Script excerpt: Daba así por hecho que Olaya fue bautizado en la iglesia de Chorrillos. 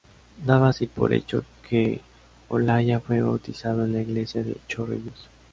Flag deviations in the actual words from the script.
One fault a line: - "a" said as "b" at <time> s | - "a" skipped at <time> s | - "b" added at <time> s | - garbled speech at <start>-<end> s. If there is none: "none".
none